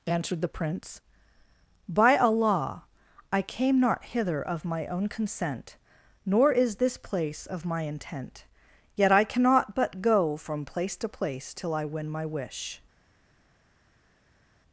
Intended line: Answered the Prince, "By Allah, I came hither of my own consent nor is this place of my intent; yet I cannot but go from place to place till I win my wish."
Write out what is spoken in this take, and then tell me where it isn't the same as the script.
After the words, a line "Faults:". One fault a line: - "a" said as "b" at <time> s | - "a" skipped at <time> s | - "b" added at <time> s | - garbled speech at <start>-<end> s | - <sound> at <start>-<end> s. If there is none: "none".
Answered the Prince, "By Allah, I came not hither of my own consent nor is this place of my intent; yet I cannot but go from place to place till I win my wish."
Faults:
- "not" added at 3.8 s